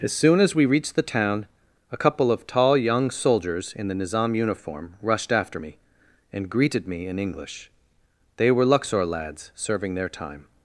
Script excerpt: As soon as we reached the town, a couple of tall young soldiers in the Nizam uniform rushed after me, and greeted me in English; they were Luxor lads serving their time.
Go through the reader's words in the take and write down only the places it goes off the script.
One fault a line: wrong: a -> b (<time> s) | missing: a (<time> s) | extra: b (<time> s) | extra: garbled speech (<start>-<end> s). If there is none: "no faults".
no faults